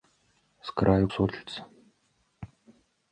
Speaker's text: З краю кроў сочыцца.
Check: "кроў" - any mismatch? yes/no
yes